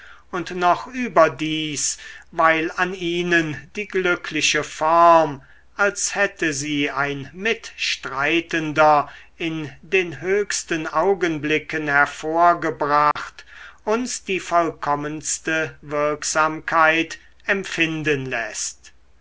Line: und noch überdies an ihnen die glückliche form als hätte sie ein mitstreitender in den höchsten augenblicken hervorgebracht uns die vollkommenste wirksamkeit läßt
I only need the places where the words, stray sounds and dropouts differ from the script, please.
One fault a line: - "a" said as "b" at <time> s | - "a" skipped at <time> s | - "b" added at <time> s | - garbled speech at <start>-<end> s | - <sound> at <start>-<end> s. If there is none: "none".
- "weil" added at 2.3 s
- dropout at 13.1-13.2 s
- "empfinden" added at 17.4 s